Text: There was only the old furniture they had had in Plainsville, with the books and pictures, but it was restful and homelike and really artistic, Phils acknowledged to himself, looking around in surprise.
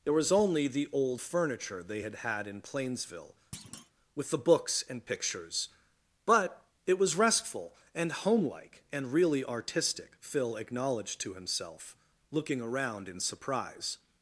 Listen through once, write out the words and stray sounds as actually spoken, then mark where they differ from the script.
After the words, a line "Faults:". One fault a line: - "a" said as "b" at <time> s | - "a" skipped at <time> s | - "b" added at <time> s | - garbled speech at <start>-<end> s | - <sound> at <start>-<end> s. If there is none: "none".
There was only the old furniture they had had in Plainsville, with the books and pictures, but it was restful and homelike and really artistic, Phil acknowledged to himself, looking around in surprise.
Faults:
- thud at 3.5-3.9 s
- "Phils" said as "Phil" at 10.2 s